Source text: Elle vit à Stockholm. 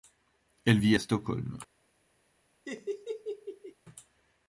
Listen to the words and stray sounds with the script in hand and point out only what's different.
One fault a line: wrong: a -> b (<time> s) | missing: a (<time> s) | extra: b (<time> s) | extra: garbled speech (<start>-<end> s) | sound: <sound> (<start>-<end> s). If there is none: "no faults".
sound: laugh (2.7-3.8 s)